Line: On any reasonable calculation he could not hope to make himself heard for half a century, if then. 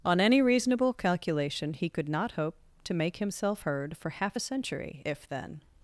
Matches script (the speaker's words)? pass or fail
pass